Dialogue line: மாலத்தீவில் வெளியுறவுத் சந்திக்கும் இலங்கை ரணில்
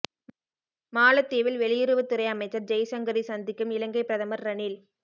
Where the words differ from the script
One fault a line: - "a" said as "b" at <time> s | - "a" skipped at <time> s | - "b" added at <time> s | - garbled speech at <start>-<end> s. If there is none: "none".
- "துறை அமைச்சர் ஜெய்சங்கரை" added at 2.1 s
- "பிரதமர்" added at 4.0 s